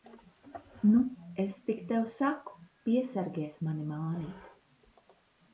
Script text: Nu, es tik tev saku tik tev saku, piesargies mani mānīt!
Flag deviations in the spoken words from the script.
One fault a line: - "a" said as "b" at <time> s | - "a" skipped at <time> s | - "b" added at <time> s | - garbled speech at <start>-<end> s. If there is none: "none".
- "tik tev saku" skipped at 2.5 s